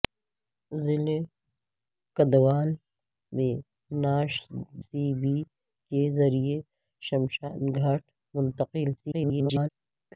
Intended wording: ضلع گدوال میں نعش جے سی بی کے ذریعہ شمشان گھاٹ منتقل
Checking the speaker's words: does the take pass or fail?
fail